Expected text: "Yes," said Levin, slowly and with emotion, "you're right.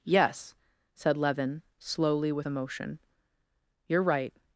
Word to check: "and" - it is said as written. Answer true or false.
false